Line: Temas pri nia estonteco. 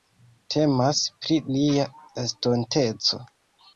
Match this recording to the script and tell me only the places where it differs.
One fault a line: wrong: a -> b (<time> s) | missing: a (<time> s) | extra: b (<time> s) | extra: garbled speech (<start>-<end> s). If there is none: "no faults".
no faults